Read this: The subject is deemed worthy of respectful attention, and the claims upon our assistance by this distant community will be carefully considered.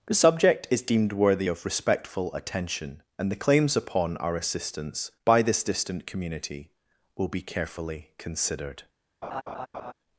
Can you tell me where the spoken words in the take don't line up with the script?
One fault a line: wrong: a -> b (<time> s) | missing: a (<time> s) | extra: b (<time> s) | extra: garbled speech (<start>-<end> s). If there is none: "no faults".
no faults